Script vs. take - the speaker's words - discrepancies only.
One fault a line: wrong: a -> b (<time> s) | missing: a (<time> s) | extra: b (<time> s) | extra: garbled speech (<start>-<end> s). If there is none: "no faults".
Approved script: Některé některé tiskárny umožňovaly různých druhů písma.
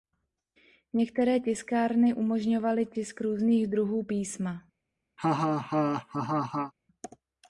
missing: některé (1.4 s)
extra: tisk (2.9 s)